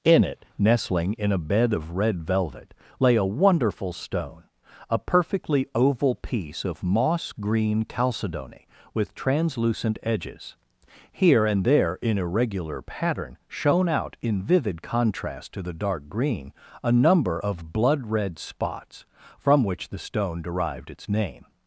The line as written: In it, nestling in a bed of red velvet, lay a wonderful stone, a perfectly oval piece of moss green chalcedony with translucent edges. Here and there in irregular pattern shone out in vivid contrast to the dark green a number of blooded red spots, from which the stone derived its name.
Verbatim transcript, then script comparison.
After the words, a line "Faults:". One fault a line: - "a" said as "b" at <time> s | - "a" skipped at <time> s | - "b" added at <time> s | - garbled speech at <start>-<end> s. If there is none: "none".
In it, nestling in a bed of red velvet, lay a wonderful stone, a perfectly oval piece of moss green chalcedony with translucent edges. Here and there in irregular pattern shone out in vivid contrast to the dark green a number of blood red spots, from which the stone derived its name.
Faults:
- "blooded" said as "blood" at 17.7 s